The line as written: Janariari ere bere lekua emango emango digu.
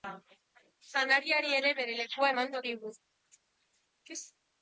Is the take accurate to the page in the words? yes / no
no